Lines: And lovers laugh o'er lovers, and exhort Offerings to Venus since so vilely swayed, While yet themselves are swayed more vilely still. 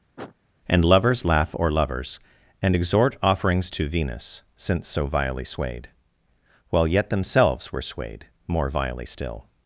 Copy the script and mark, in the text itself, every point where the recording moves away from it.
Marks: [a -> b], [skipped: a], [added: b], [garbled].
And lovers laugh o'er lovers, and exhort Offerings to Venus since so vilely swayed, While yet themselves [are -> were] swayed more vilely still.